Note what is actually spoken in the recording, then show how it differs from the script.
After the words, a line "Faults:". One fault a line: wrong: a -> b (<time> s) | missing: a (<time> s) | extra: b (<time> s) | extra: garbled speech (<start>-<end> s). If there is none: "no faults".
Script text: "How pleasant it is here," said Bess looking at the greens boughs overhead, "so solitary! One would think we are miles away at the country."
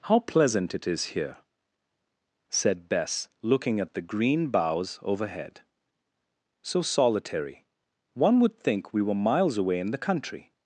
"How pleasant it is here," said Bess looking at the green boughs overhead, "so solitary! One would think we were miles away in the country."
Faults:
wrong: greens -> green (4.0 s)
wrong: are -> were (9.0 s)
wrong: at -> in (9.8 s)